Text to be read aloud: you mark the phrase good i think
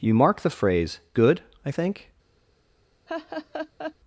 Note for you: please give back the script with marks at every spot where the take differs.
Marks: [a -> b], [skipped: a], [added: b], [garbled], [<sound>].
you mark the phrase good i think [laugh]